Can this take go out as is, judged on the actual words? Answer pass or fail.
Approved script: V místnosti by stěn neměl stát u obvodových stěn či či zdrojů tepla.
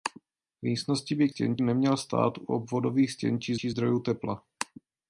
pass